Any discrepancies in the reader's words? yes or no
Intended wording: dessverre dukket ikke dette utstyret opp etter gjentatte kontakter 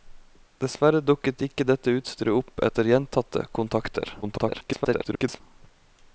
yes